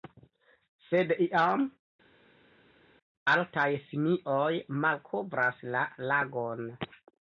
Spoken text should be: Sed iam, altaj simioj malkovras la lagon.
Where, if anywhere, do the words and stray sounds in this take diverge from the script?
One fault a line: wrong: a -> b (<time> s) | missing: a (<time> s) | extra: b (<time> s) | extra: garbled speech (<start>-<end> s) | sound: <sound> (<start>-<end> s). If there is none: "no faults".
no faults